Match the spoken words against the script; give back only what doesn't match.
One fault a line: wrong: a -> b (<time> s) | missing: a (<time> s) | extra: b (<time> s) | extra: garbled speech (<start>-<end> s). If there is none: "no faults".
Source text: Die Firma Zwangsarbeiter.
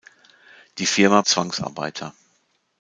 no faults